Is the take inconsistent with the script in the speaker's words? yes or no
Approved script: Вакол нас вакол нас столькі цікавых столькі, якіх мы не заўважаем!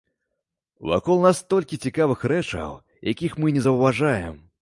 yes